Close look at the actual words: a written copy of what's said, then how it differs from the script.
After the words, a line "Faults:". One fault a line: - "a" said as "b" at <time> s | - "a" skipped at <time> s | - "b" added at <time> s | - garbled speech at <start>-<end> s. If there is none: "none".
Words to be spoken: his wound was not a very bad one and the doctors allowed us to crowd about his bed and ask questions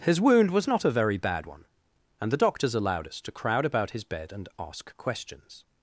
his wound was not a very bad one and the doctors allowed us to crowd about his bed and ask questions
Faults:
none